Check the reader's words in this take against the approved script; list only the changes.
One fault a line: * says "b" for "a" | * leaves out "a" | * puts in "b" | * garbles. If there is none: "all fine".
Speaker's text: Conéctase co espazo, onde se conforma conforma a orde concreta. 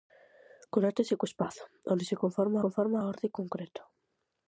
all fine